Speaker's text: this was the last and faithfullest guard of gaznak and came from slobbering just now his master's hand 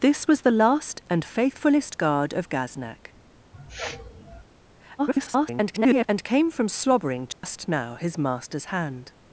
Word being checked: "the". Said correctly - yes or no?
yes